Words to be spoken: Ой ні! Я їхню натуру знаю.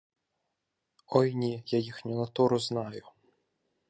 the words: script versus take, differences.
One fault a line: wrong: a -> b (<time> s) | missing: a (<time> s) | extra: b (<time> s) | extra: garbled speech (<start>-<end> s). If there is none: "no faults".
no faults